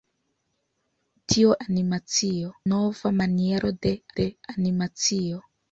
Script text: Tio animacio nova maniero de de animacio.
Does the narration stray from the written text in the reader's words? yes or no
no